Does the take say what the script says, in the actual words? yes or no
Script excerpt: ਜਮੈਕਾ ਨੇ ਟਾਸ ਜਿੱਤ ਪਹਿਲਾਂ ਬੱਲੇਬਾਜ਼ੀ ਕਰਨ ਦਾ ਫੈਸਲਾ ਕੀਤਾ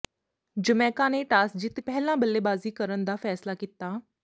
yes